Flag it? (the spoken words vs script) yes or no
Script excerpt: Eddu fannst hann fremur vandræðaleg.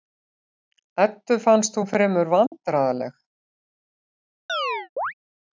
yes